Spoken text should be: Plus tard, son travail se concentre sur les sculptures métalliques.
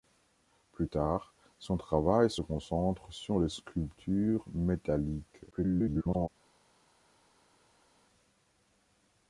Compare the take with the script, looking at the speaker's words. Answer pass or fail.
fail